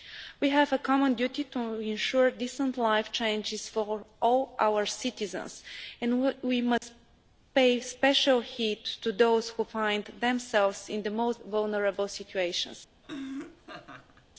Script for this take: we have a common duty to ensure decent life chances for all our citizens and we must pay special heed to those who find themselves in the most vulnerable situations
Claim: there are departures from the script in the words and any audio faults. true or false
true